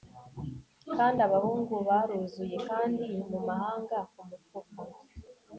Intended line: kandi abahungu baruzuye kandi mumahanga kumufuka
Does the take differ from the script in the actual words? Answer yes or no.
no